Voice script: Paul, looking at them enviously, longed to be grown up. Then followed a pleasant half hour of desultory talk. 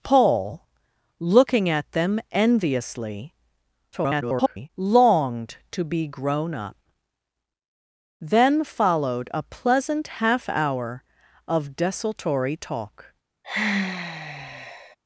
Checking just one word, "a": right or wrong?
right